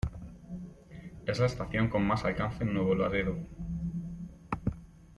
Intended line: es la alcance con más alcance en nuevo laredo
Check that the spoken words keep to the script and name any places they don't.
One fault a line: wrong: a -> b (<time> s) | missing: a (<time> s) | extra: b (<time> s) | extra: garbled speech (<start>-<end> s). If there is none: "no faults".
wrong: alcance -> estación (1.4 s)